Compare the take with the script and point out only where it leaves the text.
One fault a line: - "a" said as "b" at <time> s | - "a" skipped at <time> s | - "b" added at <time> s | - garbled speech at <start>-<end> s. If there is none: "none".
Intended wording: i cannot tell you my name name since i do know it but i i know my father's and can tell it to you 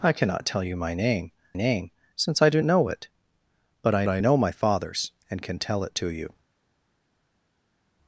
none